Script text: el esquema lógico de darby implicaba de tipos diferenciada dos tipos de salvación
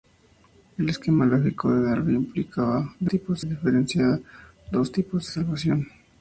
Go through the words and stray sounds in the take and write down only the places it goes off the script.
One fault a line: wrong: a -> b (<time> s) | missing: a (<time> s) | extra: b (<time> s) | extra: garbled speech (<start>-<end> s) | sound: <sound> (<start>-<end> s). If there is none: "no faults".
no faults